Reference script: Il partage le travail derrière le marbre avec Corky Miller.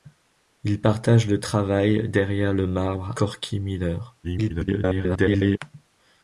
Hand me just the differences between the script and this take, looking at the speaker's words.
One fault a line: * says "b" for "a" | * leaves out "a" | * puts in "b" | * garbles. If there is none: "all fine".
* leaves out "avec"
* garbles